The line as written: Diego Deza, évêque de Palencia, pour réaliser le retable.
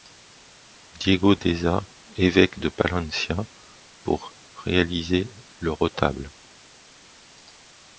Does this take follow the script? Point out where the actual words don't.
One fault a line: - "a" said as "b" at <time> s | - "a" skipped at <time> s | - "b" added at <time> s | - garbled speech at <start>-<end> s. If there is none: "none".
none